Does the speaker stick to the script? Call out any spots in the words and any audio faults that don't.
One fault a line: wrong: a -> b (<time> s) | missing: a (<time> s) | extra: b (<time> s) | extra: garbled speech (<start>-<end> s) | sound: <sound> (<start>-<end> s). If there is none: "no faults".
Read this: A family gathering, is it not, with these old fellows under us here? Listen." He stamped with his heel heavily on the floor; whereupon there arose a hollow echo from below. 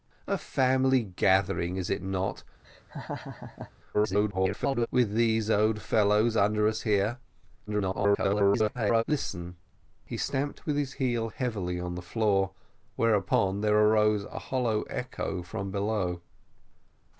sound: laugh (2.6-3.7 s)
extra: garbled speech (3.9-4.9 s)
extra: garbled speech (7.7-9.0 s)